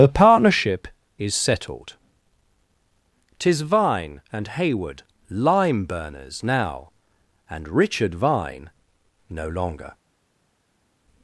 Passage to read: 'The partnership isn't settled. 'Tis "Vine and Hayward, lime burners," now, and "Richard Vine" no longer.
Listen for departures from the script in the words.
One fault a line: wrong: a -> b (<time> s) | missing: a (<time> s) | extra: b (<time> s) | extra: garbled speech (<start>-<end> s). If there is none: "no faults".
wrong: isn't -> is (1.2 s)